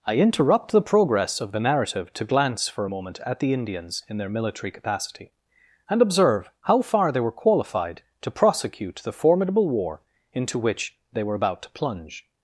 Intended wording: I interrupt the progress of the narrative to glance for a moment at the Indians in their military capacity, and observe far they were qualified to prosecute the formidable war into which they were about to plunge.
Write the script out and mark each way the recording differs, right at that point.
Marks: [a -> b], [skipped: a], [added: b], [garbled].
I interrupt the progress of the narrative to glance for a moment at the Indians in their military capacity, and observe [added: how] far they were qualified to prosecute the formidable war into which they were about to plunge.